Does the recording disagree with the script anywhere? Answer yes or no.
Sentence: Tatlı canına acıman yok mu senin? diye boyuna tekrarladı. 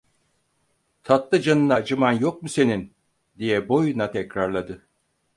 no